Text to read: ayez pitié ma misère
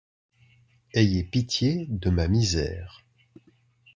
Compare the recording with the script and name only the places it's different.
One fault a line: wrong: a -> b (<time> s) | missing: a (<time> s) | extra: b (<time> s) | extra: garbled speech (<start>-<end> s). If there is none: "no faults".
extra: de (1.9 s)